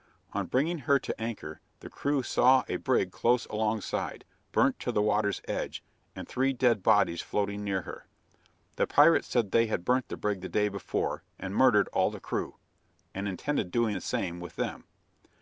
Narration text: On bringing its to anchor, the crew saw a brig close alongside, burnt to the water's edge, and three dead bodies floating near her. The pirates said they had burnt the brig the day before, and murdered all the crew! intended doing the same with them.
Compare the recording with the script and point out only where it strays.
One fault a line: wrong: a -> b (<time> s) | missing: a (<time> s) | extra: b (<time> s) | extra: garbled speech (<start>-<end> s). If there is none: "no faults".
wrong: its -> her (0.8 s)
extra: and (13.1 s)